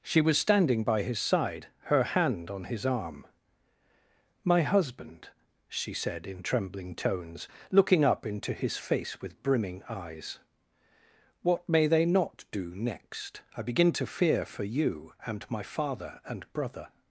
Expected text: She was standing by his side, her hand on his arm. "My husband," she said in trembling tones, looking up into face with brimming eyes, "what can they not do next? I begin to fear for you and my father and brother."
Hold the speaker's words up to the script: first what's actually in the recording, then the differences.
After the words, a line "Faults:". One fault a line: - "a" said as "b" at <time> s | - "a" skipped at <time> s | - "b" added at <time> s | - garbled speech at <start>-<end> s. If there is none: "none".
She was standing by his side, her hand on his arm. "My husband," she said in trembling tones, looking up into his face with brimming eyes, "what may they not do next? I begin to fear for you and my father and brother."
Faults:
- "his" added at 8.5 s
- "can" said as "may" at 11.7 s